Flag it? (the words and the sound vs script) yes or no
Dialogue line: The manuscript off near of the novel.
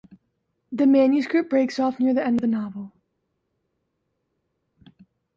yes